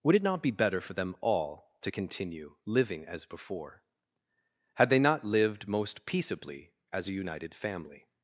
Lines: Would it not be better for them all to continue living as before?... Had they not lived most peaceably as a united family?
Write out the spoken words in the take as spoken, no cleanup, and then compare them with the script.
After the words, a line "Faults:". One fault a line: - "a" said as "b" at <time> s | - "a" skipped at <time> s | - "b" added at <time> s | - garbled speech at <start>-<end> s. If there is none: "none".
Would it not be better for them all to continue living as before?... Had they not lived most peaceably as a united family?
Faults:
none